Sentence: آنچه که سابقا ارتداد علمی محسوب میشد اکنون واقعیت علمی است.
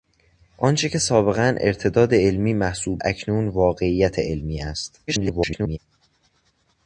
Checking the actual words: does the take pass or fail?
fail